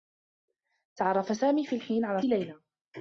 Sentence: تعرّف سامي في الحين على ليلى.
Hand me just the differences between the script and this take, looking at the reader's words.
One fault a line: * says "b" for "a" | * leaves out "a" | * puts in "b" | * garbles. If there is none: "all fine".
all fine